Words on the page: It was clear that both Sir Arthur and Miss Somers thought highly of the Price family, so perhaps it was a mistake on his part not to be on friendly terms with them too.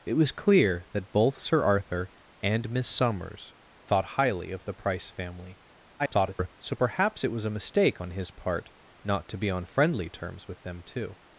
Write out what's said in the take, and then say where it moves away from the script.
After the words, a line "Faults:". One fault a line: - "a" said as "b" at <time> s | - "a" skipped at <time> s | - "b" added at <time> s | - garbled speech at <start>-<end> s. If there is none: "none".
It was clear that both Sir Arthur and Miss Somers thought highly of the Price family, [garbled] so perhaps it was a mistake on his part not to be on friendly terms with them too.
Faults:
- garbled speech at 6.0-6.6 s